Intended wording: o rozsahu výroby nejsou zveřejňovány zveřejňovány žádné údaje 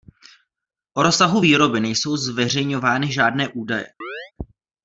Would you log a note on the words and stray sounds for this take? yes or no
yes